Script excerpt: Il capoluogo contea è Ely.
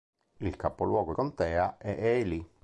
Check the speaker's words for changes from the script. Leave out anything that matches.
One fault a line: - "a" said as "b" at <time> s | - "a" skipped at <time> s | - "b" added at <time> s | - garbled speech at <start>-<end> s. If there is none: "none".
none